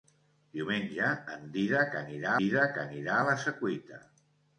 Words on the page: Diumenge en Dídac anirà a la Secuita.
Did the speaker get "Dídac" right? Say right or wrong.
right